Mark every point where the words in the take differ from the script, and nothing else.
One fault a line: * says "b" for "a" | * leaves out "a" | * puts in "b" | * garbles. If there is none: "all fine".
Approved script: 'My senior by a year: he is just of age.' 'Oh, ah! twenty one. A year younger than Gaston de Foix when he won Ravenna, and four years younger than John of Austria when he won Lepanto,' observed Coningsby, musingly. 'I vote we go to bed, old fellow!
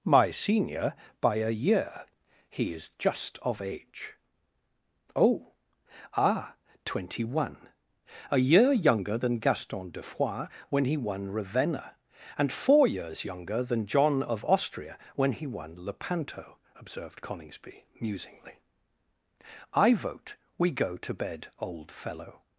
all fine